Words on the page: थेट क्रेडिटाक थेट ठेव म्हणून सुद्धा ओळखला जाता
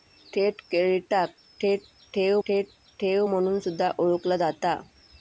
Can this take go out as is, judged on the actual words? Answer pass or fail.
fail